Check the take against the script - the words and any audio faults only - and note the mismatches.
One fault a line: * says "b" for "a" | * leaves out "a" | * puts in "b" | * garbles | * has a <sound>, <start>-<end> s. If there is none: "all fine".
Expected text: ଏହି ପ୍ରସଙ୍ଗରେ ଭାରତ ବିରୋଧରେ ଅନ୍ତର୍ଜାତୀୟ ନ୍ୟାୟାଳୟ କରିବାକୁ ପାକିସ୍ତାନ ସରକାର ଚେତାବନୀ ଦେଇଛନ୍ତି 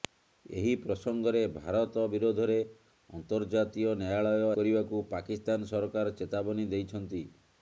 all fine